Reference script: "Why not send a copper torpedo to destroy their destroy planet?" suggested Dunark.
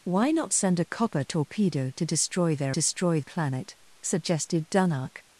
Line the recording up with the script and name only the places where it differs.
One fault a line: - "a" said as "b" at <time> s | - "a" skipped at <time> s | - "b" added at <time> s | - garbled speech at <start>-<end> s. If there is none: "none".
none